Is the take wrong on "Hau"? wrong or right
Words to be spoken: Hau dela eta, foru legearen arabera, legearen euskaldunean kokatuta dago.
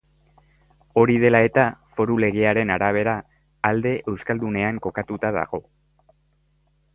wrong